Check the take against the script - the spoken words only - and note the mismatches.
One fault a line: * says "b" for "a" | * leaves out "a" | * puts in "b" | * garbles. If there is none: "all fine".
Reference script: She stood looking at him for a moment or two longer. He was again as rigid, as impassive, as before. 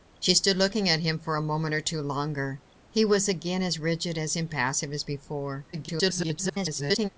* garbles